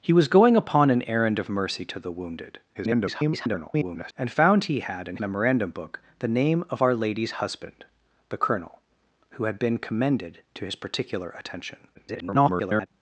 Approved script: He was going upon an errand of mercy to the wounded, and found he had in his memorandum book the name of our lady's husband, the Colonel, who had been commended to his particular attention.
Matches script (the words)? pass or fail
fail